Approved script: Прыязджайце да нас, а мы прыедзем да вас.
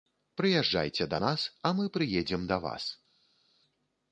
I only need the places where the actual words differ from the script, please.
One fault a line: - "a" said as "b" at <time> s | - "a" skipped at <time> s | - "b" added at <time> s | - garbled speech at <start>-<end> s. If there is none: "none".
none